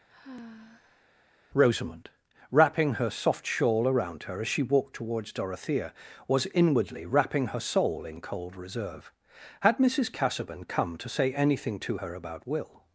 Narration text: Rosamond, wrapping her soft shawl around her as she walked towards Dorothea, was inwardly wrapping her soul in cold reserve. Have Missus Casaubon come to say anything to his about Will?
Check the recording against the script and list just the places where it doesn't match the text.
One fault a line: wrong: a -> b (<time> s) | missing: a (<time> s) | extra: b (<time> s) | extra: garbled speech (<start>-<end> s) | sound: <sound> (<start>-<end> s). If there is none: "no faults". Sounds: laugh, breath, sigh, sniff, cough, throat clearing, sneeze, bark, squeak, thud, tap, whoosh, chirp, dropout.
sound: sigh (0.1-1.1 s)
wrong: Have -> Had (9.6 s)
wrong: his -> her (12.0 s)